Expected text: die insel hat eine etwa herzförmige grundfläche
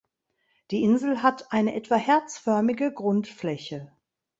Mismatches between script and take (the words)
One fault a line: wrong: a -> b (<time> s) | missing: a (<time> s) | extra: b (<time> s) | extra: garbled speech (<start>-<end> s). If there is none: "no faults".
no faults